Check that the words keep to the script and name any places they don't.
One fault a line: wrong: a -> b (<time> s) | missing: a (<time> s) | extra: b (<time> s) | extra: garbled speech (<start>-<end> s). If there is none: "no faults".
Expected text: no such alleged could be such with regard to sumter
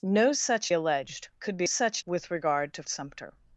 no faults